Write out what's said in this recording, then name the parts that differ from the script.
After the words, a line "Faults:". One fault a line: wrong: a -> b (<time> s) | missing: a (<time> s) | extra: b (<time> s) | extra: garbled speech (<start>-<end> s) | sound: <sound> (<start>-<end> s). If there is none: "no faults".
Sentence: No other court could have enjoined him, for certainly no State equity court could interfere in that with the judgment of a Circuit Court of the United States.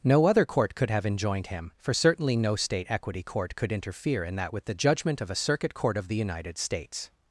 No other court could have enjoined him, for certainly no State equity court could interfere in that with the judgment of a Circuit Court of the United States.
Faults:
no faults